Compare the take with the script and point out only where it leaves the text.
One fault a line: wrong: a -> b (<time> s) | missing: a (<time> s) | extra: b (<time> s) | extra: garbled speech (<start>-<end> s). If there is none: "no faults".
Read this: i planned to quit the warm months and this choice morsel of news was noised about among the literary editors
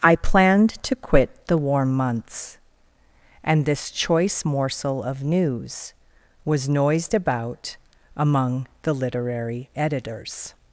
no faults